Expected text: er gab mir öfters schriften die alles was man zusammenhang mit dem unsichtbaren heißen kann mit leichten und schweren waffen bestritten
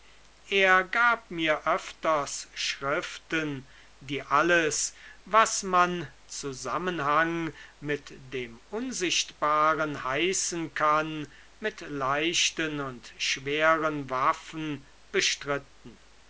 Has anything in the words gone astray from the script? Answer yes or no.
no